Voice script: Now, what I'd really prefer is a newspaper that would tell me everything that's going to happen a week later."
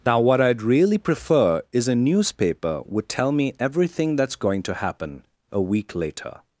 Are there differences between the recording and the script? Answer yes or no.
yes